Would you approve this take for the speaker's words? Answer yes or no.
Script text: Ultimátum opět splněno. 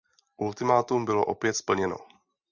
no